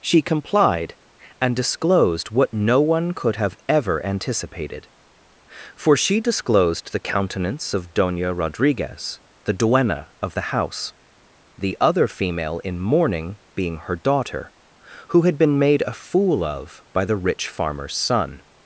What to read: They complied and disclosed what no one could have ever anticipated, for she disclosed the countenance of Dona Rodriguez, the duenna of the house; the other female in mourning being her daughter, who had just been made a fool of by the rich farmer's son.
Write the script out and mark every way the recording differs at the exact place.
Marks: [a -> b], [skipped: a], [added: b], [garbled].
[They -> She] complied and disclosed what no one could have ever anticipated, for she disclosed the countenance of Dona Rodriguez, the duenna of the house; the other female in mourning being her daughter, who had [skipped: just] been made a fool of by the rich farmer's son.